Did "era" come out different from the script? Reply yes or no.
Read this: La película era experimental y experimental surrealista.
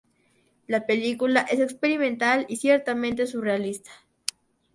yes